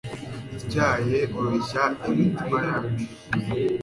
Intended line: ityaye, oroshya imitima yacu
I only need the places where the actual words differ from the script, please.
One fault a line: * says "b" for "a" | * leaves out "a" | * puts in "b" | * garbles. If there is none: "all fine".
all fine